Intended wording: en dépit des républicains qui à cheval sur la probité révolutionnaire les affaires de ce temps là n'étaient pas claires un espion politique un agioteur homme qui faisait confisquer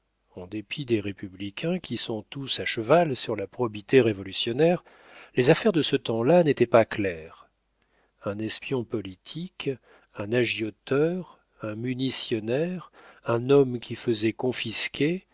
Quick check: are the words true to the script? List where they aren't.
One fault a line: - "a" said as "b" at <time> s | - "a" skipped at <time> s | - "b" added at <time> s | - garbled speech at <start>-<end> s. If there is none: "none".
- "sont tous" added at 2.0 s
- "un munitionnaire un" added at 11.6 s